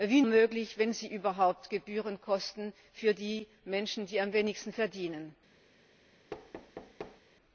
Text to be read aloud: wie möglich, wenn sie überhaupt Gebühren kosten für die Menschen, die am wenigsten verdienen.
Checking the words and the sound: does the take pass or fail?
fail